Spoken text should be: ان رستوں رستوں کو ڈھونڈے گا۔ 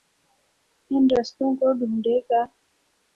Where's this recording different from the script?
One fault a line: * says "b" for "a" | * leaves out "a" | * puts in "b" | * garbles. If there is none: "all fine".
* leaves out "رستوں"